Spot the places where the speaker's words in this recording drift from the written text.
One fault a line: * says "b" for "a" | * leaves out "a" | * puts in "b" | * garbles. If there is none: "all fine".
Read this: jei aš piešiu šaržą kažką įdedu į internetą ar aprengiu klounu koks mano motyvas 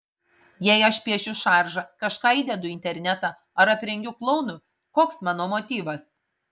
all fine